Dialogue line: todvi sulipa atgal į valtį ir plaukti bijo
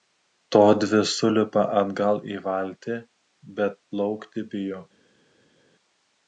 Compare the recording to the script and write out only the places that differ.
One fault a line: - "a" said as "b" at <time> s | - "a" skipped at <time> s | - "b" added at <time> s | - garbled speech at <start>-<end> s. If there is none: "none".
- "ir" said as "bet" at 3.6 s